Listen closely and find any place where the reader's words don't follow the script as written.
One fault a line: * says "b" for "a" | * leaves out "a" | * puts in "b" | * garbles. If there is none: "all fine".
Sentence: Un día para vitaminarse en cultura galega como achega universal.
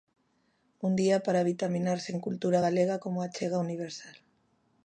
all fine